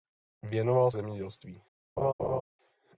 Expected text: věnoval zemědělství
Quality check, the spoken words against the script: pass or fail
pass